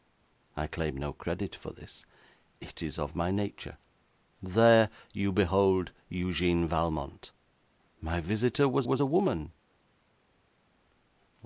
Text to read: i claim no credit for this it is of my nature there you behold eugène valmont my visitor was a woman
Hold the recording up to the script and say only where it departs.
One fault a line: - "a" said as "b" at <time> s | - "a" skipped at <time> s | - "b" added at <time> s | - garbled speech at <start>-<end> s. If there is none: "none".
- "was" added at 8.8 s